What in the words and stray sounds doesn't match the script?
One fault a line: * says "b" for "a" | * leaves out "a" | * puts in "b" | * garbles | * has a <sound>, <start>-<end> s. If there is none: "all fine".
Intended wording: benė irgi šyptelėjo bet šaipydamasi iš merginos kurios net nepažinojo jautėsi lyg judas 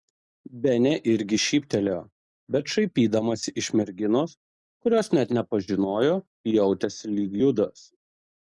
all fine